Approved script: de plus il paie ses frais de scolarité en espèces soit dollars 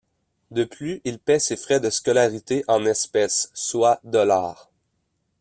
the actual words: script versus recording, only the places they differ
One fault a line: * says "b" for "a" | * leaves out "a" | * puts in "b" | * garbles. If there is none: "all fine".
all fine